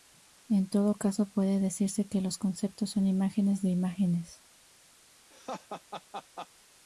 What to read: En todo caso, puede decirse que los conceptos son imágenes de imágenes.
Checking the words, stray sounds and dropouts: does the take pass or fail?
fail